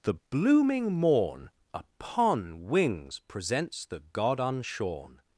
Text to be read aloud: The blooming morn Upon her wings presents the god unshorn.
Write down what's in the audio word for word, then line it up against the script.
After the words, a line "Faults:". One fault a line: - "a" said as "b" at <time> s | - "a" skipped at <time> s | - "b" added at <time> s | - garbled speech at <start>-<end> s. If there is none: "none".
The blooming morn Upon wings presents the god unshorn.
Faults:
- "her" skipped at 2.7 s